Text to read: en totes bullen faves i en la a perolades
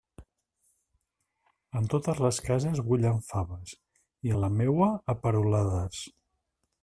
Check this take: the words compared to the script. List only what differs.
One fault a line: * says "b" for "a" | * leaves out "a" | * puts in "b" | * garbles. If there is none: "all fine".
* puts in "les cases"
* puts in "meua"